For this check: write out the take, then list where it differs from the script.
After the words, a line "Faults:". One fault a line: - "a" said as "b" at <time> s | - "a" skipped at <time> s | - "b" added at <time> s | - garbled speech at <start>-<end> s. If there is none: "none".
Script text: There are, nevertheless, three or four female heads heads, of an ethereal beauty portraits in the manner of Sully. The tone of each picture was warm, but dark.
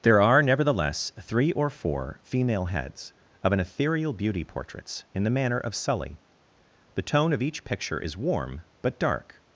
There are, nevertheless, three or four female heads, of an ethereal beauty portraits in the manner of Sully. The tone of each picture is warm, but dark.
Faults:
- "heads" skipped at 3.1 s
- "was" said as "is" at 8.0 s